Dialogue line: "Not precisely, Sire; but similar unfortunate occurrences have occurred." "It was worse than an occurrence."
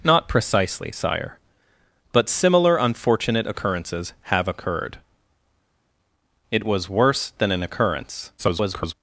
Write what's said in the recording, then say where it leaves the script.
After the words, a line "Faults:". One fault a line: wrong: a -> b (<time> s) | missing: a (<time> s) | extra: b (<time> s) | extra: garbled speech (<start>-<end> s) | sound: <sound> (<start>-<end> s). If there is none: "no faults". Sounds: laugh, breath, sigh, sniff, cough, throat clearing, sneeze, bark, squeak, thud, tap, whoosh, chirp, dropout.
"Not precisely, Sire; but similar unfortunate occurrences have occurred." "It was worse than an occurrence." [garbled]
Faults:
extra: garbled speech (8.4-8.9 s)